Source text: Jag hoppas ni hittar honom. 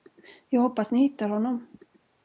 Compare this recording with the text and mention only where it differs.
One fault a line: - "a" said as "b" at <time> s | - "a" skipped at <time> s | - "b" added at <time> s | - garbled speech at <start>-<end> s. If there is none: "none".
none